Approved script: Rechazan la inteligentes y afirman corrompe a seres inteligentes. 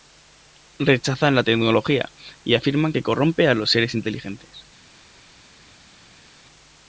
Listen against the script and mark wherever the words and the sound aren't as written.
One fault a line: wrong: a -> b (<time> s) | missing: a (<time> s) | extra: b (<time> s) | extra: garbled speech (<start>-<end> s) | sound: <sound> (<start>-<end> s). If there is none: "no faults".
wrong: inteligentes -> tecnología (1.4 s)
extra: que (2.9 s)
extra: los (3.5 s)